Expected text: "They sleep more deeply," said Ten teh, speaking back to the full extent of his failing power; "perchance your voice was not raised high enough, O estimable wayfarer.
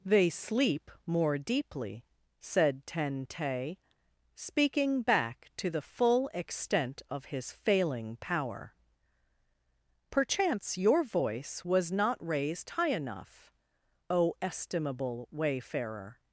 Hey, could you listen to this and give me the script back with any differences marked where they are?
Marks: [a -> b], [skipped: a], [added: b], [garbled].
"They sleep more deeply," said Ten teh, speaking back to the full extent of his failing power; "perchance your voice was not raised high enough, O estimable wayfarer.